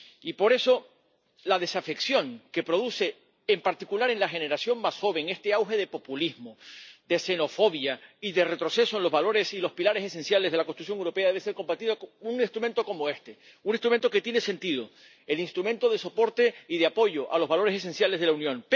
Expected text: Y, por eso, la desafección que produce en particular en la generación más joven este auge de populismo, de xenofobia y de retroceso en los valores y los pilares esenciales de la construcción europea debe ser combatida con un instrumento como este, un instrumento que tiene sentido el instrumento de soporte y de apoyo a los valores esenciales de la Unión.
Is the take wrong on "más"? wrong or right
right